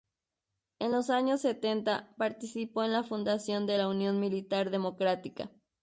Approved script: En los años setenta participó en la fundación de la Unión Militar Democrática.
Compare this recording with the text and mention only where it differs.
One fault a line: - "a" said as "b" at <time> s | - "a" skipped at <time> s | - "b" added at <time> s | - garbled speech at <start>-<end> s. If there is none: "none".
none